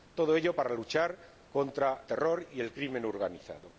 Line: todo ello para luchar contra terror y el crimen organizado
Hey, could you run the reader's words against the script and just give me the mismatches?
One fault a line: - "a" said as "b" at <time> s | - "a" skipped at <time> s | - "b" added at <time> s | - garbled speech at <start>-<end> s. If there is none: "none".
none